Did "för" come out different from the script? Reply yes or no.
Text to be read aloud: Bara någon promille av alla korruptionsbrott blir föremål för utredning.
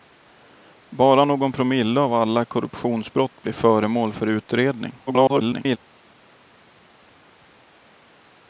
no